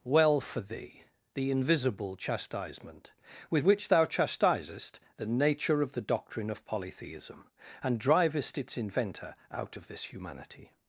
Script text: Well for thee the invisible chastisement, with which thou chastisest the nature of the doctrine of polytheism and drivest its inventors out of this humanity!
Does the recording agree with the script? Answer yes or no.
no